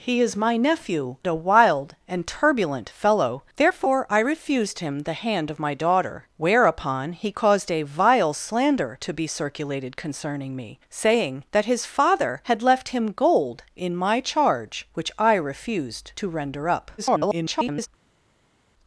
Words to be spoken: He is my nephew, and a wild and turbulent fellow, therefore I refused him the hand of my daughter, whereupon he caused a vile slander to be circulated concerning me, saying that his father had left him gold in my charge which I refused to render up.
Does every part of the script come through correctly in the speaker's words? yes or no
no